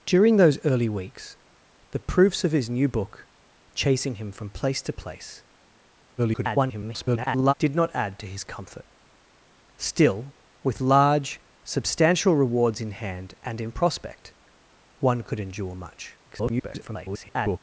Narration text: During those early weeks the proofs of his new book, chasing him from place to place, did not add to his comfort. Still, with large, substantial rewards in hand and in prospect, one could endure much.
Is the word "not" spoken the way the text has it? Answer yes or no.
yes